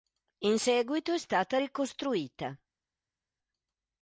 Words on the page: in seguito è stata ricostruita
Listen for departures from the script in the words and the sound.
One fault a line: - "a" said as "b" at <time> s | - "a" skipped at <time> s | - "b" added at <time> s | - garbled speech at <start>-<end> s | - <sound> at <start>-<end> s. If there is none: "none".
none